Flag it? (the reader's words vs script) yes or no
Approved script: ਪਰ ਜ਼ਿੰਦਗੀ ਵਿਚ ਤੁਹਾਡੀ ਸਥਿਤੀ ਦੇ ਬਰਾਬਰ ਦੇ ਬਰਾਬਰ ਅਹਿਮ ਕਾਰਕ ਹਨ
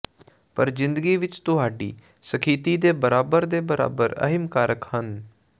no